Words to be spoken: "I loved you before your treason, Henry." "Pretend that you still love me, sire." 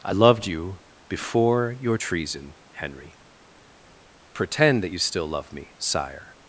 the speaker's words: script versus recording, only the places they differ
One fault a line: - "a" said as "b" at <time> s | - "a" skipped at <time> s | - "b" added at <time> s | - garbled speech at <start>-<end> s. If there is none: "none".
none